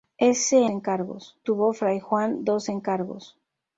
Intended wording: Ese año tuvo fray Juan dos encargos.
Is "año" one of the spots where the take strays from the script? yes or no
yes